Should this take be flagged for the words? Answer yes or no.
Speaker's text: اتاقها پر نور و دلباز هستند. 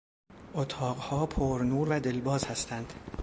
no